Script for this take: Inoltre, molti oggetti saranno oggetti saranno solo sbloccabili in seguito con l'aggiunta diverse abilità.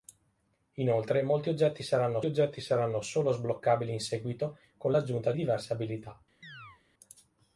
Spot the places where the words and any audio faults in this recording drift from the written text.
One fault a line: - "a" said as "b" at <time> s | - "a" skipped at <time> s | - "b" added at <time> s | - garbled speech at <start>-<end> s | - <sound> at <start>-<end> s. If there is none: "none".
- chirp at 6.4-6.8 s